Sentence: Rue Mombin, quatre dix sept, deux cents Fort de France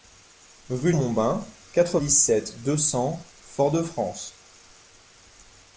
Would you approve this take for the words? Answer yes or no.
yes